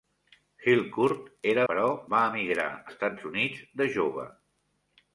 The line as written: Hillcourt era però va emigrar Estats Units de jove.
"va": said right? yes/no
yes